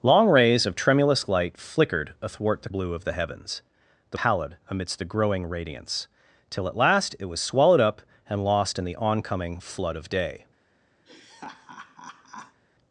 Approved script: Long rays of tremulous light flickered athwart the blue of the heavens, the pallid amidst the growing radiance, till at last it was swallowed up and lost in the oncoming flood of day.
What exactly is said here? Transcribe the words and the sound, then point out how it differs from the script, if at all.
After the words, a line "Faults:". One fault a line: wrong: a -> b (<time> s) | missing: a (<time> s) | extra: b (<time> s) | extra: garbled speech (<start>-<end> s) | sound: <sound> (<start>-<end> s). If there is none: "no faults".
Long rays of tremulous light flickered athwart the blue of the heavens, the pallid amidst the growing radiance, till at last it was swallowed up and lost in the oncoming flood of day.
Faults:
sound: laugh (11.1-12.6 s)